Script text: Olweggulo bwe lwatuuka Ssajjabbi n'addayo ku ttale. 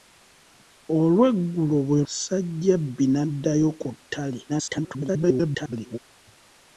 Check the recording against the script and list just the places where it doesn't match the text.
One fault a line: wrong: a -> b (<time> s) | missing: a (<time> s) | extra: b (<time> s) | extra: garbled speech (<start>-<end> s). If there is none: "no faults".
missing: lwatuuka (2.0 s)
extra: garbled speech (4.5-6.0 s)